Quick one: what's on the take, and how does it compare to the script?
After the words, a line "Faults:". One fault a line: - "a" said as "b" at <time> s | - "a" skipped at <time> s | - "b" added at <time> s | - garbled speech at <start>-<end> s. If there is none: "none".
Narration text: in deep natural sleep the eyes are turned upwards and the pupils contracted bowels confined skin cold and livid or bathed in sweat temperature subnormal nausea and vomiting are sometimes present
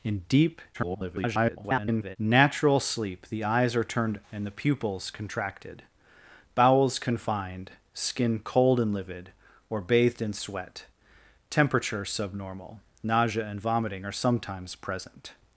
in deep [garbled] natural sleep the eyes are turned and the pupils contracted bowels confined skin cold and livid or bathed in sweat temperature subnormal nausea and vomiting are sometimes present
Faults:
- garbled speech at 0.7-2.2 s
- "upwards" skipped at 4.2 s